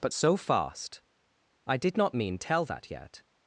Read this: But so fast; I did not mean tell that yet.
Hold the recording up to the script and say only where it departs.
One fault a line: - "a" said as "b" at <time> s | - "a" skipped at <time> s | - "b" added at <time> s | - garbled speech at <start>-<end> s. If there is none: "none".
none